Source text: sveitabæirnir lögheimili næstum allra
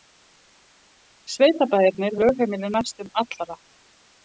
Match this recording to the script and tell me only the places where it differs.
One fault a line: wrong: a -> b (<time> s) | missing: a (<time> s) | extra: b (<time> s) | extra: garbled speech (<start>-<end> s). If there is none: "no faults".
no faults